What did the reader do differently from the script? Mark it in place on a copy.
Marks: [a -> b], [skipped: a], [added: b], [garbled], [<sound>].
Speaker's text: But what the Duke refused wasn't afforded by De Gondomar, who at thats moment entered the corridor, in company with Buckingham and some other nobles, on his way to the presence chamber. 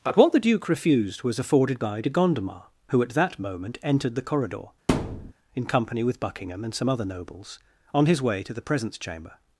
But what the Duke refused [wasn't -> was] afforded by De Gondomar, who at [thats -> that] moment entered the corridor, [thud] in company with Buckingham and some other nobles, on his way to the presence chamber.